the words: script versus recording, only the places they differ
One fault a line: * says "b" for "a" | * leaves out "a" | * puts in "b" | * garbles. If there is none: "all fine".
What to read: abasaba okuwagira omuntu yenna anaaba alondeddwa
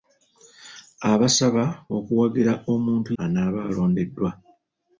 * leaves out "yenna"